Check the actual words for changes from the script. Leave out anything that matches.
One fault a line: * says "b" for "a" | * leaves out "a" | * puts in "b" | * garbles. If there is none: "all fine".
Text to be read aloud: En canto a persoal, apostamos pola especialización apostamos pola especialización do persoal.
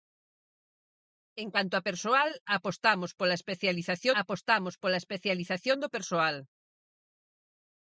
all fine